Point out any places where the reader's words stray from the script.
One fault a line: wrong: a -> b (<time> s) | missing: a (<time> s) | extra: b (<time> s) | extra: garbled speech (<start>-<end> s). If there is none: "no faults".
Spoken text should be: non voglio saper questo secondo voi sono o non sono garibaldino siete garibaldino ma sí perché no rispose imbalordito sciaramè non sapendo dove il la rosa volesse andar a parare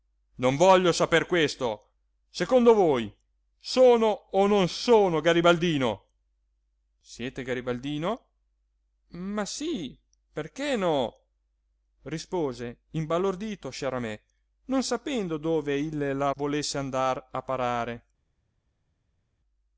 missing: rosa (16.3 s)